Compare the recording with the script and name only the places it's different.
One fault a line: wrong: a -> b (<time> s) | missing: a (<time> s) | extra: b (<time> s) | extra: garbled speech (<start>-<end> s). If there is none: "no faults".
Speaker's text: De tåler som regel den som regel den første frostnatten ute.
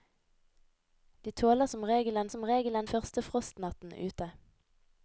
no faults